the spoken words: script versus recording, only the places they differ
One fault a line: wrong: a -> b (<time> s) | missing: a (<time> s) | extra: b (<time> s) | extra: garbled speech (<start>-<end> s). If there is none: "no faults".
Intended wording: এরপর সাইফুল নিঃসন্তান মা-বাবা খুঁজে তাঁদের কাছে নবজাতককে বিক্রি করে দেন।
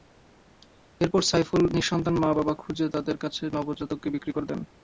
no faults